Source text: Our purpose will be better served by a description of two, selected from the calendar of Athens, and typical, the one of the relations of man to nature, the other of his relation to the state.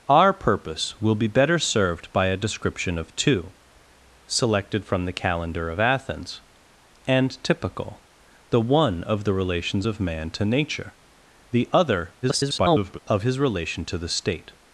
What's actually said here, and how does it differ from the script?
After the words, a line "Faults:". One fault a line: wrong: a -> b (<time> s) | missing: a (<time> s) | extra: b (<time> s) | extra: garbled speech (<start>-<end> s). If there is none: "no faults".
Our purpose will be better served by a description of two, selected from the calendar of Athens, and typical, the one of the relations of man to nature, the other [garbled] of his relation to the state.
Faults:
extra: garbled speech (12.2-13.0 s)